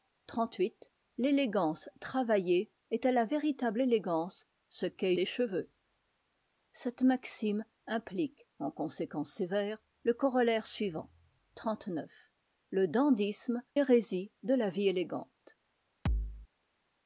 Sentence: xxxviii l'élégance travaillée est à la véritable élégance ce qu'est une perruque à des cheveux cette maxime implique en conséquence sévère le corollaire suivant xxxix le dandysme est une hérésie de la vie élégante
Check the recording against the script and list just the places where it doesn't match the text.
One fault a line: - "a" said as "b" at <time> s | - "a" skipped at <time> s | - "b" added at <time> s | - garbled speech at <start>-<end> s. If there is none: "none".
- "une perruque à" skipped at 5.1 s
- "est une" skipped at 13.6 s